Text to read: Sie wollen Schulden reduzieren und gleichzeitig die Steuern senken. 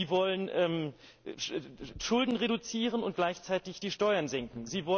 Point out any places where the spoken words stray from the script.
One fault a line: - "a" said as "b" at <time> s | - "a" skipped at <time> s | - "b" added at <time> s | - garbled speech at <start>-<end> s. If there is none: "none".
none